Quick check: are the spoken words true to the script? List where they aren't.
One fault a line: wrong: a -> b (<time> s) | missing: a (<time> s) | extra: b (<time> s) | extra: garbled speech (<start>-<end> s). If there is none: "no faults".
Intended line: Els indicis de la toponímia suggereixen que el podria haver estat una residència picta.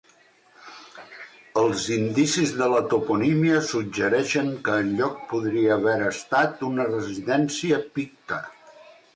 extra: lloc (5.0 s)